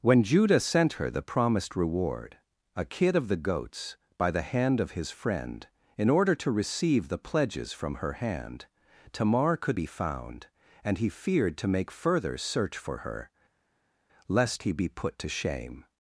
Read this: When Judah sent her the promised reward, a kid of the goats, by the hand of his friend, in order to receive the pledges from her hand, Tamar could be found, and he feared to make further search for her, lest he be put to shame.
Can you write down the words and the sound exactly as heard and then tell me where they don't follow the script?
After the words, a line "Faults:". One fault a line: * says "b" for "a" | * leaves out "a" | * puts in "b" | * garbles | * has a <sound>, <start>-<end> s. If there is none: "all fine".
When Judah sent her the promised reward, a kid of the goats, by the hand of his friend, in order to receive the pledges from her hand, Tamar could be found, and he feared to make further search for her, lest he be put to shame.
Faults:
all fine